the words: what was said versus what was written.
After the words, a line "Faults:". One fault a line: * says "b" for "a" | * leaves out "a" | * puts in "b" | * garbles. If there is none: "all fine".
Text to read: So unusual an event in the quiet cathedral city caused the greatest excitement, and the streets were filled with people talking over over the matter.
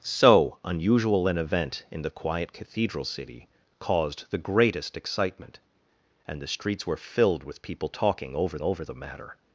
So unusual an event in the quiet cathedral city caused the greatest excitement, and the streets were filled with people talking over over the matter.
Faults:
all fine